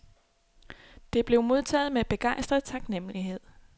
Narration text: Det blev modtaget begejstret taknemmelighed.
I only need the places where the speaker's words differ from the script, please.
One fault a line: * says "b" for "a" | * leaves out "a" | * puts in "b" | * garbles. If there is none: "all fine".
* puts in "med"